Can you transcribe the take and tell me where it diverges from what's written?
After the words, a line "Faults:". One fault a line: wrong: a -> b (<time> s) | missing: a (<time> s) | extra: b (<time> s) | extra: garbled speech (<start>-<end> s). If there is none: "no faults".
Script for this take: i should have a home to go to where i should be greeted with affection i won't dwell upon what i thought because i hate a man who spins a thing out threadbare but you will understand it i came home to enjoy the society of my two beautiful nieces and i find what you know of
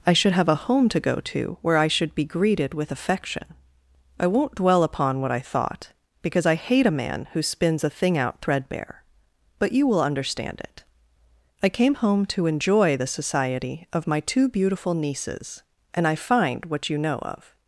i should have a home to go to where i should be greeted with affection i won't dwell upon what i thought because i hate a man who spins a thing out threadbare but you will understand it i came home to enjoy the society of my two beautiful nieces and i find what you know of
Faults:
no faults